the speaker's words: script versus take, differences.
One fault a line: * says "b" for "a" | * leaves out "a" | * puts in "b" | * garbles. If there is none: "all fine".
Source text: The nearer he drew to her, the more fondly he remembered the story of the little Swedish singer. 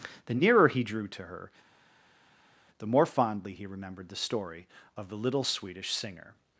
all fine